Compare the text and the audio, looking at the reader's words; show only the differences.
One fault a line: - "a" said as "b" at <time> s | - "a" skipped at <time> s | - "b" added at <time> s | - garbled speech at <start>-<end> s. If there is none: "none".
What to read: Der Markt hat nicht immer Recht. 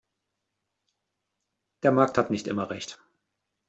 none